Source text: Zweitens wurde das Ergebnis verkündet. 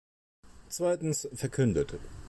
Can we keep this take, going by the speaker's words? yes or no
no